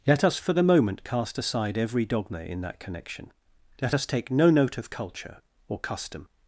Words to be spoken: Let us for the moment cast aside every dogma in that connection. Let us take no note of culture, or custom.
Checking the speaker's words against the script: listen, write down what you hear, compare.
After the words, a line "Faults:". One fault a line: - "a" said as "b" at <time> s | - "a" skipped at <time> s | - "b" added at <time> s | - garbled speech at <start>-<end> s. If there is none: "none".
Let us for the moment cast aside every dogma in that connection. Let us take no note of culture, or custom.
Faults:
none